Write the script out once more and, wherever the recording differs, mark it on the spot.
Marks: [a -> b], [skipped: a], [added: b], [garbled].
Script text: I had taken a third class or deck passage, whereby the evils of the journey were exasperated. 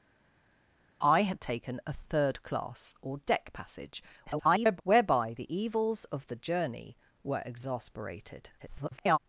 I had taken a third class or deck passage, [garbled] whereby the evils of the journey were exasperated. [garbled]